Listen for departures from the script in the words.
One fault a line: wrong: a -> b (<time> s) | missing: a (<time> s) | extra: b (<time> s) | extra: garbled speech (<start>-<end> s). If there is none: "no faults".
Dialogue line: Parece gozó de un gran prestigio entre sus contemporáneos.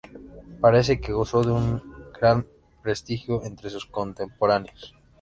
extra: que (1.0 s)